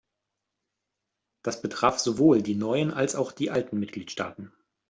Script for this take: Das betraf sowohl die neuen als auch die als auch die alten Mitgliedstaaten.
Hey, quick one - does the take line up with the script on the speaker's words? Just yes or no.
no